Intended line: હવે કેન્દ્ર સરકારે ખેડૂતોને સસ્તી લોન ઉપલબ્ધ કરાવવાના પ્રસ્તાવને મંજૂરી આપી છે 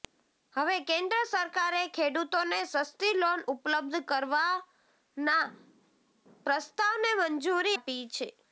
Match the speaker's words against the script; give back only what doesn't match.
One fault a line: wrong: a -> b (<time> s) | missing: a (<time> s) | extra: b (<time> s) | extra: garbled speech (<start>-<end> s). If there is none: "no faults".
no faults